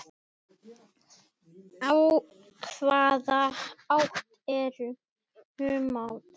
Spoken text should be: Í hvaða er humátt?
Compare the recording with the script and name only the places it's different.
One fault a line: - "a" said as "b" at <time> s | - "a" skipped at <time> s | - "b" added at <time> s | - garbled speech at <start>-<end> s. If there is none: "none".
- "átt" added at 4.0 s